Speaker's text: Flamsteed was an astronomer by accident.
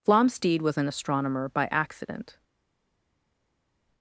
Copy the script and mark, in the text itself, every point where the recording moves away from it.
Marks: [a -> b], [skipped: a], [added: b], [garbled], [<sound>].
Flamsteed was an astronomer by accident.